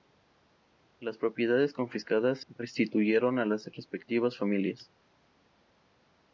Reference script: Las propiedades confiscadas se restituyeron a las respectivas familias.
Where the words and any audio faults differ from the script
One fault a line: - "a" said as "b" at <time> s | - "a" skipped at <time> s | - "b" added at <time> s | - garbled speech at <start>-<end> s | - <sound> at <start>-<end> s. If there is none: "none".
- "se" skipped at 2.4 s